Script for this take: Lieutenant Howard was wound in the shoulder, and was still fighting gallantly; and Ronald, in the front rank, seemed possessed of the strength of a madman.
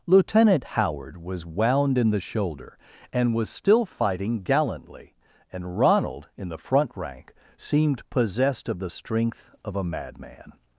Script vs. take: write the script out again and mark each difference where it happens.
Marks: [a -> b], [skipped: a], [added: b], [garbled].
Lieutenant Howard was wound in the shoulder, and was still fighting gallantly; and Ronald, in the front rank, seemed possessed of the strength of a madman.